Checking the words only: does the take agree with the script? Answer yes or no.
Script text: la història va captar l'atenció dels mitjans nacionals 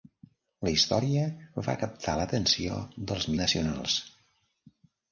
no